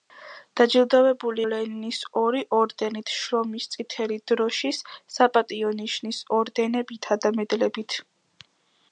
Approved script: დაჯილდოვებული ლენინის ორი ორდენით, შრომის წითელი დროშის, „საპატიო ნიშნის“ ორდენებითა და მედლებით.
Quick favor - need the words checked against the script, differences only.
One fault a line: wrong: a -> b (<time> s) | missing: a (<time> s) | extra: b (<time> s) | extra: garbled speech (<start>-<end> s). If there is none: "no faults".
no faults